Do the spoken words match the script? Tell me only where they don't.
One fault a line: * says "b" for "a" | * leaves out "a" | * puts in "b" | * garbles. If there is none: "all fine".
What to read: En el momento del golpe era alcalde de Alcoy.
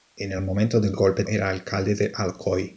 all fine